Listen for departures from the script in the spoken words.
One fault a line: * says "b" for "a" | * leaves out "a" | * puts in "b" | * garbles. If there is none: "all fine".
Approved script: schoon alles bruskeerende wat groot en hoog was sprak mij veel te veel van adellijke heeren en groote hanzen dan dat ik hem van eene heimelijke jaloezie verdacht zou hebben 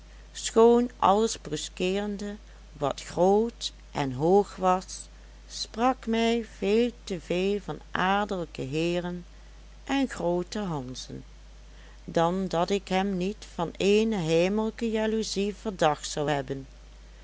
* puts in "niet"